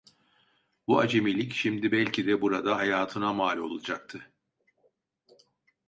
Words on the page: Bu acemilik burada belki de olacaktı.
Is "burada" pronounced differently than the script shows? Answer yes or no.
yes